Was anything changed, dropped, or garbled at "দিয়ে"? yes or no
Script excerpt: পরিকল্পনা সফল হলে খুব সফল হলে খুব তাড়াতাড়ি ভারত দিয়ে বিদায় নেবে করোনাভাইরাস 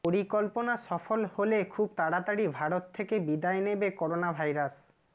yes